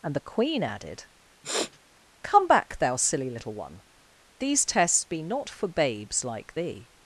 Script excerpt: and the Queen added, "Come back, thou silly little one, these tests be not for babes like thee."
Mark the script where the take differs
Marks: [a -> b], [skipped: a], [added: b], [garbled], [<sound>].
and the Queen added, [sniff] "Come back, thou silly little one, these tests be not for babes like thee."